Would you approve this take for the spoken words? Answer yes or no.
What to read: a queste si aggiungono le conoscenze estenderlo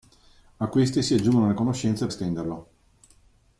yes